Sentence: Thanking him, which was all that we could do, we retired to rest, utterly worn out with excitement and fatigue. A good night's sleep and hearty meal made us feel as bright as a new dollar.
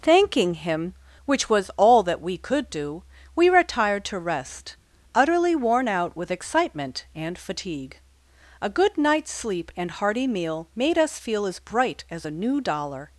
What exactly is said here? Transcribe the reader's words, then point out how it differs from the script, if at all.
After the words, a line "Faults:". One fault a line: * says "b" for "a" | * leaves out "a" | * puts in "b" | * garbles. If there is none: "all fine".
Thanking him, which was all that we could do, we retired to rest, utterly worn out with excitement and fatigue. A good night's sleep and hearty meal made us feel as bright as a new dollar.
Faults:
all fine